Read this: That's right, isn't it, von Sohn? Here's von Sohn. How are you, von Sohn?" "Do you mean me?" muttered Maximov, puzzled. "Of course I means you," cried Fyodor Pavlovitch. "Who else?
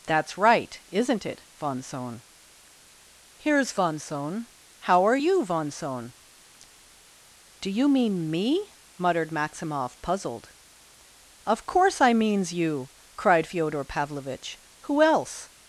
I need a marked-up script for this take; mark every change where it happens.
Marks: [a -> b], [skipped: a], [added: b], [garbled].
That's right, isn't it, von Sohn? Here's von Sohn. How are you, von Sohn?" "Do you mean me?" muttered Maximov, puzzled. "Of course I means you," cried Fyodor Pavlovitch. "Who else?